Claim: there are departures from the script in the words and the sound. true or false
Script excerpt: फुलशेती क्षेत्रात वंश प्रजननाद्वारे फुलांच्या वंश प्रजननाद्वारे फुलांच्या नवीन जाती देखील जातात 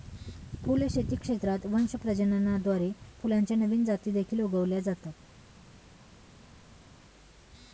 true